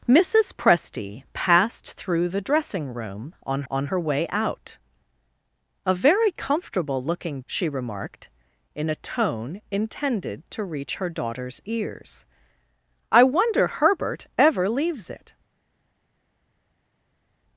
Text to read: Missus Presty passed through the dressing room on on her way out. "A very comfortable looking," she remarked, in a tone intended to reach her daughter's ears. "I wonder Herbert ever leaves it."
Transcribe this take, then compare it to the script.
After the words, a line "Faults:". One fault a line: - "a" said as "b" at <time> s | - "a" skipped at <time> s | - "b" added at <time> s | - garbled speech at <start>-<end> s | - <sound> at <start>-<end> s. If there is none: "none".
Missus Presty passed through the dressing room on on her way out. "A very comfortable looking," she remarked, in a tone intended to reach her daughter's ears. "I wonder Herbert ever leaves it."
Faults:
none